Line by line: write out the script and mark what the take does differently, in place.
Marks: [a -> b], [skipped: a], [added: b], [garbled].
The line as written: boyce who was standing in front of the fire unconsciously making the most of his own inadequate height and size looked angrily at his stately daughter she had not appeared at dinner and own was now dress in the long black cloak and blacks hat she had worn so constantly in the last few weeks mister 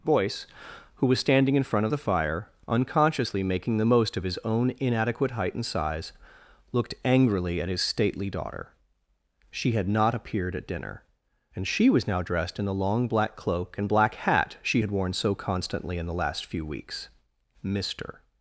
boyce who was standing in front of the fire unconsciously making the most of his own inadequate height and size looked angrily at his stately daughter she had not appeared at dinner and [own -> she] was now [dress -> dressed] in the long black cloak and [blacks -> black] hat she had worn so constantly in the last few weeks mister